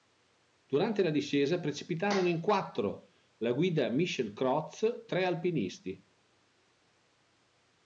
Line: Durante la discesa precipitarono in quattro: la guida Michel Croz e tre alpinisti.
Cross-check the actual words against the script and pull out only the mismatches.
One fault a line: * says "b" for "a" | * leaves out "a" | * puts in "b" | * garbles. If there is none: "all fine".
* leaves out "e"